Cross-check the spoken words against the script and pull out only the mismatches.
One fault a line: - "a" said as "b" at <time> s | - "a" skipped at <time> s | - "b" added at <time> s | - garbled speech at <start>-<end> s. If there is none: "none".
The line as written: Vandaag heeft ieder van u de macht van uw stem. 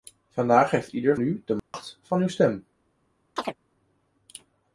- "van" skipped at 1.1 s